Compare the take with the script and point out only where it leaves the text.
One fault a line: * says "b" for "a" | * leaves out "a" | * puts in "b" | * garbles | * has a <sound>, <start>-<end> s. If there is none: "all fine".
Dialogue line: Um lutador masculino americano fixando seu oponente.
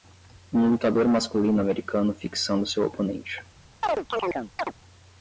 * has a chirp, 3.8-4.7 s